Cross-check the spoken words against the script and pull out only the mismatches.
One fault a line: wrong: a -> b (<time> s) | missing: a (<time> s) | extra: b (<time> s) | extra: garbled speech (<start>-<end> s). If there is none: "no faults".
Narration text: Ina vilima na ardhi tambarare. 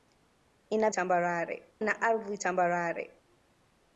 wrong: vilima -> tambarare (0.9 s)